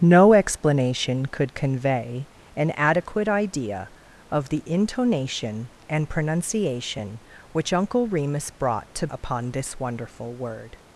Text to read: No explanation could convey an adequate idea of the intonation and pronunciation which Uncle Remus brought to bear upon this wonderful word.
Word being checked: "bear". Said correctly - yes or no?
no